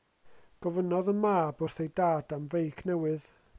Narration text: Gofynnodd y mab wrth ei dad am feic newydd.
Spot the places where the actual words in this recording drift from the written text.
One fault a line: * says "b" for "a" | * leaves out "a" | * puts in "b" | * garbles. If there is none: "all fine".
all fine